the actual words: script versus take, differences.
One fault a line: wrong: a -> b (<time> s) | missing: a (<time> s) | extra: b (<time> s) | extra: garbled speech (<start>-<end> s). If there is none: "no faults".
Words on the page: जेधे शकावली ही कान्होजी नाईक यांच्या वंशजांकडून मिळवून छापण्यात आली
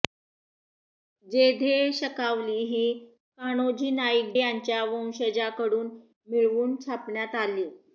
no faults